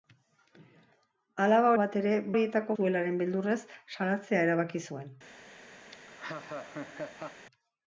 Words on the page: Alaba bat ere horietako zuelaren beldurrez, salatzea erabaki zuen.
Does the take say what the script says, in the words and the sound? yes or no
no